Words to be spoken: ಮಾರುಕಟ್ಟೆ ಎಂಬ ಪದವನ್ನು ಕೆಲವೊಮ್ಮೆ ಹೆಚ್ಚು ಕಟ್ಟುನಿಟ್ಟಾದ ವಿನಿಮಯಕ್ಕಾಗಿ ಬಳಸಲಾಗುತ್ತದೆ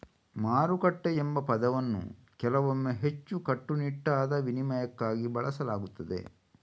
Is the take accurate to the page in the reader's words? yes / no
yes